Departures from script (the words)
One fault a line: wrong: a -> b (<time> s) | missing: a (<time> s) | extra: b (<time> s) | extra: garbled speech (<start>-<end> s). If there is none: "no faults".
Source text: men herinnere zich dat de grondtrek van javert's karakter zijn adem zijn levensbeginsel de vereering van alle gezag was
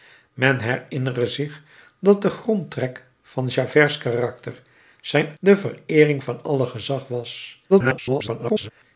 missing: adem zijn levensbeginsel (5.4 s)
extra: garbled speech (7.7-8.7 s)